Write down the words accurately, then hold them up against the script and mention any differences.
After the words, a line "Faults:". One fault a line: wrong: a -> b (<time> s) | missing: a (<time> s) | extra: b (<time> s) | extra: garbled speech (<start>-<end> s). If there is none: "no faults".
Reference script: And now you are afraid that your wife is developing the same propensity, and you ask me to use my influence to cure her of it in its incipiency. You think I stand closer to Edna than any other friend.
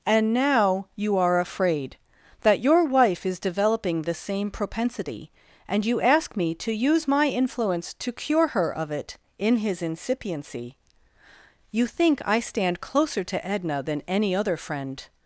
And now you are afraid that your wife is developing the same propensity, and you ask me to use my influence to cure her of it in his incipiency. You think I stand closer to Edna than any other friend.
Faults:
wrong: its -> his (9.6 s)